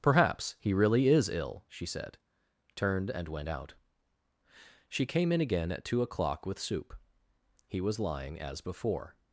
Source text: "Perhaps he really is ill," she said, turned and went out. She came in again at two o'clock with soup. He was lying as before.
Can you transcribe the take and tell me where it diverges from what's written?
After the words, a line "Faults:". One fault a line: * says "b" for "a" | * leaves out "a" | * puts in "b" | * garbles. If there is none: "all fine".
"Perhaps he really is ill," she said, turned and went out. She came in again at two o'clock with soup. He was lying as before.
Faults:
all fine